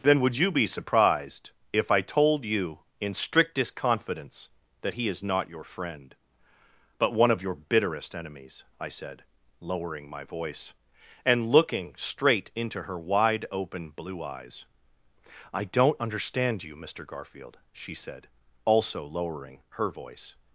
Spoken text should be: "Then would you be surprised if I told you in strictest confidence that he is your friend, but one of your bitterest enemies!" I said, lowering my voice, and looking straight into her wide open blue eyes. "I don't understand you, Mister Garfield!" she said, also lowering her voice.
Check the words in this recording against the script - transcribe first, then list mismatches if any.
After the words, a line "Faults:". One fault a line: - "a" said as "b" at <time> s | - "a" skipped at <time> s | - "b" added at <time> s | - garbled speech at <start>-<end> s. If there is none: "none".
"Then would you be surprised if I told you in strictest confidence that he is not your friend, but one of your bitterest enemies!" I said, lowering my voice, and looking straight into her wide open blue eyes. "I don't understand you, Mister Garfield!" she said, also lowering her voice.
Faults:
- "not" added at 5.2 s